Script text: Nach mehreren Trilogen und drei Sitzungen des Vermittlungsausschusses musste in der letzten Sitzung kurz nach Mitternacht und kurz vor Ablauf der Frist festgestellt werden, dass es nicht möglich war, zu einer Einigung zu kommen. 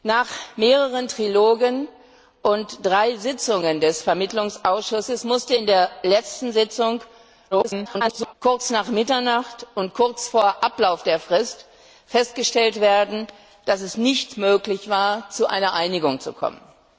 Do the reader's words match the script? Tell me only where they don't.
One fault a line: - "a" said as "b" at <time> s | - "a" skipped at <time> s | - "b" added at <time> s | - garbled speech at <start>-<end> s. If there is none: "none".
- garbled speech at 7.5-8.3 s